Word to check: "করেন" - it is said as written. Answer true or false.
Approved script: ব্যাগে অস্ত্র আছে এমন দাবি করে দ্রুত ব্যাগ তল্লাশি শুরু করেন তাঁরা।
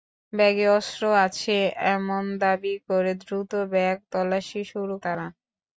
false